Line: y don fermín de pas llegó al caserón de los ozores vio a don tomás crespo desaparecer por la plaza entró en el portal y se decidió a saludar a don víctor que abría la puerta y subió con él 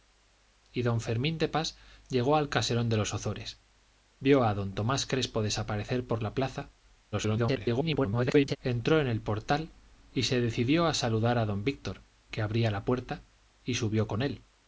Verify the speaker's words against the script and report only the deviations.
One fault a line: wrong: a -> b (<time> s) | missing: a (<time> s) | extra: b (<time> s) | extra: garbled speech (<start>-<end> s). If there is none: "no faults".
extra: garbled speech (7.1-8.6 s)